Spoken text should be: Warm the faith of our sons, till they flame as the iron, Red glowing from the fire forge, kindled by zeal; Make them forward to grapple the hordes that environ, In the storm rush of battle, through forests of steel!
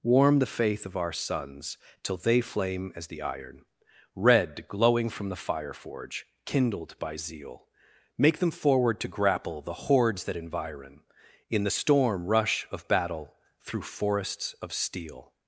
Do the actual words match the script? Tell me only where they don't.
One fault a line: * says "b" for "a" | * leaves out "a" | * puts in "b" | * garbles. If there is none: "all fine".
all fine